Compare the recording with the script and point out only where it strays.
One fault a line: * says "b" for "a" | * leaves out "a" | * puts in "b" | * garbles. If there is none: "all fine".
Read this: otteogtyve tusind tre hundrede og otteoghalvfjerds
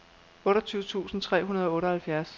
all fine